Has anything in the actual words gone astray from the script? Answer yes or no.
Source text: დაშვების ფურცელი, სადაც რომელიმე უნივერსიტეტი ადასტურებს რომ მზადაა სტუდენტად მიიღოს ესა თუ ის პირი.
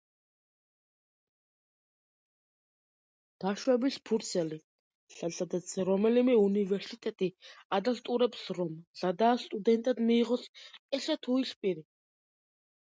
no